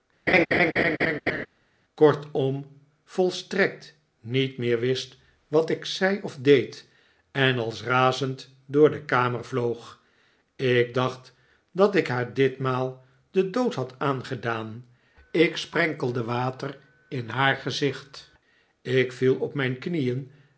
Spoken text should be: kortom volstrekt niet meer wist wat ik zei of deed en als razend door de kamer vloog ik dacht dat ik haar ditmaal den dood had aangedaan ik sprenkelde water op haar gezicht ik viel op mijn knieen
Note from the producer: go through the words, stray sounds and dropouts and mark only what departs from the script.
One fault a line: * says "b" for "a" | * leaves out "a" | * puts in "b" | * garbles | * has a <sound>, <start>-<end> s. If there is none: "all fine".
* has a laugh, 0.3-1.5 s
* says "in" for "op"